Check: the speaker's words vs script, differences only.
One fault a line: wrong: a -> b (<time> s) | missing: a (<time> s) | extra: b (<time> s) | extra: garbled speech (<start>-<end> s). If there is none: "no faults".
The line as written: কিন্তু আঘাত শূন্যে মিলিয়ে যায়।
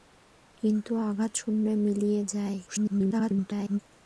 extra: garbled speech (2.7-3.8 s)